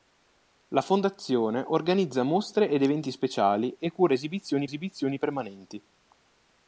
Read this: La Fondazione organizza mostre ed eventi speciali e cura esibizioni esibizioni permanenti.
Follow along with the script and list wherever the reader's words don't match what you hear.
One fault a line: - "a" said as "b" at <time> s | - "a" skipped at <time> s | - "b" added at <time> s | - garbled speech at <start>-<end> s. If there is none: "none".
none